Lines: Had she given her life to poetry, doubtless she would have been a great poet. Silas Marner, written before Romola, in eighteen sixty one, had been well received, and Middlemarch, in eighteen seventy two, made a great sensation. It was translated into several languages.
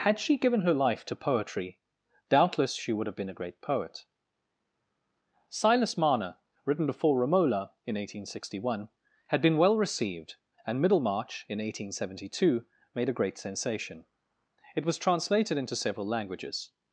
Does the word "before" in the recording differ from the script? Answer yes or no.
no